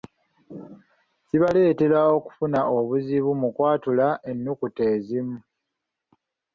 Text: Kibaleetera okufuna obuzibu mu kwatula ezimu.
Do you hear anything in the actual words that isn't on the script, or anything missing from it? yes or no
yes